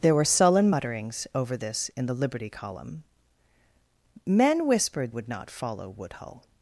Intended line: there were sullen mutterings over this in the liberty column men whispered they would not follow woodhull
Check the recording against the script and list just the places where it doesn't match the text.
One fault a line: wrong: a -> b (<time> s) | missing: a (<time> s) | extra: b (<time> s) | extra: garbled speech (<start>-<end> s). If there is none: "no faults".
missing: they (5.1 s)